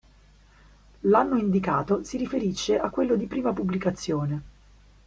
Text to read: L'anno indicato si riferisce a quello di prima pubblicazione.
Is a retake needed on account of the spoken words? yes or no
no